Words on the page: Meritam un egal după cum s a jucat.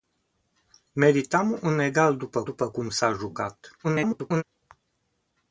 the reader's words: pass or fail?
fail